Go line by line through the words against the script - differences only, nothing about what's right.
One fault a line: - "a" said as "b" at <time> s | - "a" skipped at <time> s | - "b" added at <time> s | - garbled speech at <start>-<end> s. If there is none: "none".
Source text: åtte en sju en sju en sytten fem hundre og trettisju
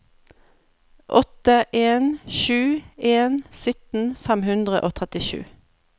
- "sju en" skipped at 3.4 s